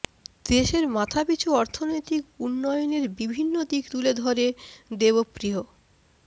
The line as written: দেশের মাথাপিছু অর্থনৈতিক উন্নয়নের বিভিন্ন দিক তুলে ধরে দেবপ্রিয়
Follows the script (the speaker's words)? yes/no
yes